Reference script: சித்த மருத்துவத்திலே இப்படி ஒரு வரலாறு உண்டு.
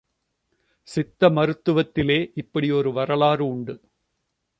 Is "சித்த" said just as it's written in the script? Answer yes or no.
yes